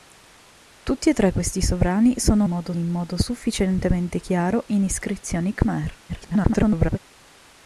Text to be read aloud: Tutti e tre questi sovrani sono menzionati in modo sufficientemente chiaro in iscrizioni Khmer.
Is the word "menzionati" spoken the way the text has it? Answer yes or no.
no